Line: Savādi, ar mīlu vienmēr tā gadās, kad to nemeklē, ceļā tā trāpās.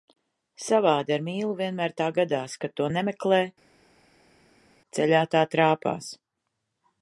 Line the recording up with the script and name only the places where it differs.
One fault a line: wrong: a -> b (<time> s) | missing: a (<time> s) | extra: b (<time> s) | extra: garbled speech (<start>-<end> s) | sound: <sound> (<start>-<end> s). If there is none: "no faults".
no faults